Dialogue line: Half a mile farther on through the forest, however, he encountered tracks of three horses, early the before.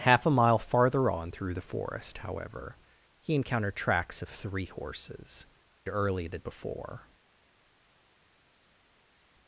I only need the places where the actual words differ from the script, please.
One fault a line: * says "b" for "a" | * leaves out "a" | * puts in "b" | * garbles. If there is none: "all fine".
all fine